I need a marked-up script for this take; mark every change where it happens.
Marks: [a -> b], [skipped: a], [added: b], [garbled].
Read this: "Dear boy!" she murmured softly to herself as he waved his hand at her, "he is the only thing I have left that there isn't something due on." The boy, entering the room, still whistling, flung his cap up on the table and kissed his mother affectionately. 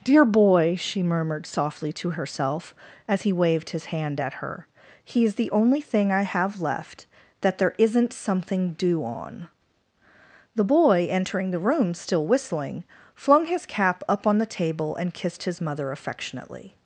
"Dear boy!" she murmured softly to herself as he waved his hand at her, "he is the only thing I have left that there isn't something due on." The boy, entering the room, still whistling, flung his cap up on the table and kissed his mother affectionately.